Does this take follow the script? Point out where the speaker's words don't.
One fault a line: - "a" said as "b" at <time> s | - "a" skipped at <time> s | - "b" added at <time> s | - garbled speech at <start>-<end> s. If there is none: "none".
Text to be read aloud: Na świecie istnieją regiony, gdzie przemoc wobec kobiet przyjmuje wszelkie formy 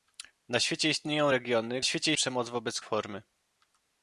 - "gdzie" said as "świecie" at 1.8 s
- "kobiet przyjmuje wszelkie" skipped at 2.8 s